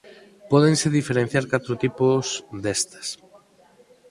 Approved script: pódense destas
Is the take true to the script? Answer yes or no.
no